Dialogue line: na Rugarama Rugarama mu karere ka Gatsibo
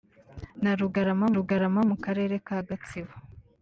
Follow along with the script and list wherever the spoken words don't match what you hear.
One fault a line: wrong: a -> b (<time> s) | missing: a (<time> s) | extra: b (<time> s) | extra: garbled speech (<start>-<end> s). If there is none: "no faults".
no faults